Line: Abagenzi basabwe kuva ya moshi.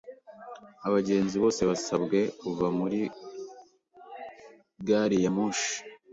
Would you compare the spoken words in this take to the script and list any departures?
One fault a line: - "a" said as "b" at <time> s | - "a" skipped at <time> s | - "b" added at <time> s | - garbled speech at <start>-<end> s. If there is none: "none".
- "bose" added at 1.4 s
- "muri gari" added at 2.8 s